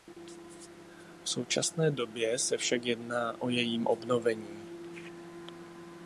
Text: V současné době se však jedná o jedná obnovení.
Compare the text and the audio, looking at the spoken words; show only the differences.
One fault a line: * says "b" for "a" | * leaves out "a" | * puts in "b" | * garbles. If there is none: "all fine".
* says "jejím" for "jedná"